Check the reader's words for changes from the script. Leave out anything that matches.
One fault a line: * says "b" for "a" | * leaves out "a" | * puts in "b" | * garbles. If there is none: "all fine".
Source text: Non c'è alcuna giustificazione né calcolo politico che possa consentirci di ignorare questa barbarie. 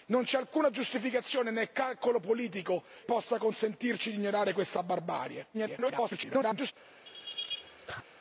* leaves out "che"
* garbles